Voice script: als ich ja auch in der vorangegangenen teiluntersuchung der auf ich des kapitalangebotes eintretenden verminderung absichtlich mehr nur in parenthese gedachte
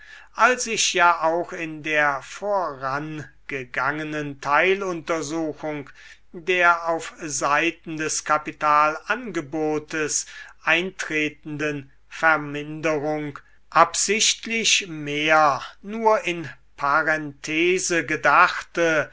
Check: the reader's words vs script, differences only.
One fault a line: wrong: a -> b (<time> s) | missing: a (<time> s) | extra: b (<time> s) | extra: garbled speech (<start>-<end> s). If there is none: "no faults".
wrong: ich -> seiten (7.2 s)